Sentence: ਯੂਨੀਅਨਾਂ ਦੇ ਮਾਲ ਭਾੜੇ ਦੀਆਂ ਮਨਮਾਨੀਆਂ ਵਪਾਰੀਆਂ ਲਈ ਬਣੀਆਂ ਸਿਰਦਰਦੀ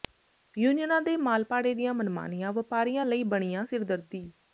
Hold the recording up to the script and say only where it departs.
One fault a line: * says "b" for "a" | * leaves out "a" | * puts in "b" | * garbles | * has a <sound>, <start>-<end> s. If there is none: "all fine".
all fine